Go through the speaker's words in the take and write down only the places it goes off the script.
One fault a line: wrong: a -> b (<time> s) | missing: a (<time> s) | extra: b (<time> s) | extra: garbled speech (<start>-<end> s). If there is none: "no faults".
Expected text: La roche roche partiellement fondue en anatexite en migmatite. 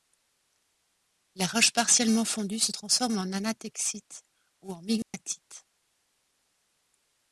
missing: roche (1.7 s)
extra: se transforme (2.6 s)
extra: ou (4.6 s)